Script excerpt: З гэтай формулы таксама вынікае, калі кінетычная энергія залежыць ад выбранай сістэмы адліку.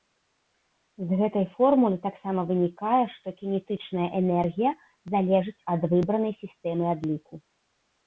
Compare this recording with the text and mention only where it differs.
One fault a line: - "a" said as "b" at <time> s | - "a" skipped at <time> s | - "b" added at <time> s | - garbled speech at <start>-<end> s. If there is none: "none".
- "калі" said as "што" at 3.2 s